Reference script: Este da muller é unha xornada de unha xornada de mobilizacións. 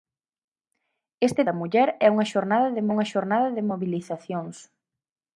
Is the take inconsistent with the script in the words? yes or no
no